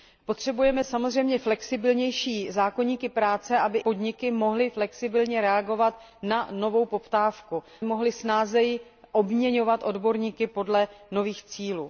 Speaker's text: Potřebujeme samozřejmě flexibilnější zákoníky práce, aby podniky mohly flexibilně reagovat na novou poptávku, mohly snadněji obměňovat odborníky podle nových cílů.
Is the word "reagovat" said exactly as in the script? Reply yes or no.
yes